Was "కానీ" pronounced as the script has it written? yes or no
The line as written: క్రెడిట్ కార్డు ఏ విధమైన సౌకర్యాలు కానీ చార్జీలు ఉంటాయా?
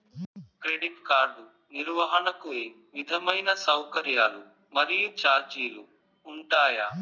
no